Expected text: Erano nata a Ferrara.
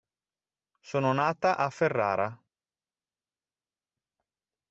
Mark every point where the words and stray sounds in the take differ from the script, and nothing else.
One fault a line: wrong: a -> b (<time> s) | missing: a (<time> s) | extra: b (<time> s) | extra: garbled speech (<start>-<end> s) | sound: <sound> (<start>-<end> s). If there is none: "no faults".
wrong: Erano -> Sono (0.8 s)